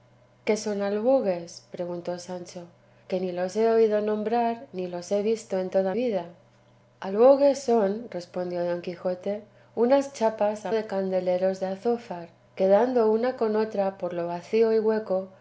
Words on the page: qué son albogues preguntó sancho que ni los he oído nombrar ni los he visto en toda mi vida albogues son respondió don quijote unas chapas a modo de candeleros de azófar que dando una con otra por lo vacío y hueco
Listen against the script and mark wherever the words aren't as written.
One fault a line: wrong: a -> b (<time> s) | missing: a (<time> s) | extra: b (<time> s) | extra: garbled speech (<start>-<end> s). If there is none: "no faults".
missing: mi (5.9 s)
missing: modo (10.7 s)